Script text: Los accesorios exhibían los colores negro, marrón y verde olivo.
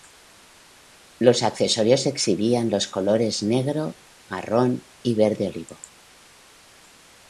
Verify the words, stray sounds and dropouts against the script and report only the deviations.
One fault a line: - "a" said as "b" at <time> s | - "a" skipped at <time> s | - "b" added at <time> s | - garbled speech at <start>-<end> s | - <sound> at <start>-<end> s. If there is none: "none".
none